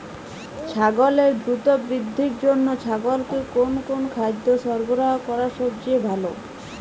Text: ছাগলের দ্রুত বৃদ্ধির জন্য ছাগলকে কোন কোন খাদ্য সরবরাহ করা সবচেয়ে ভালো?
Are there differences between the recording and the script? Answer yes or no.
no